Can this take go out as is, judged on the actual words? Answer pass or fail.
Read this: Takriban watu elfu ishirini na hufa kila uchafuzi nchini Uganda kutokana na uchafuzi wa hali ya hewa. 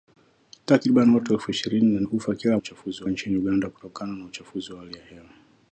pass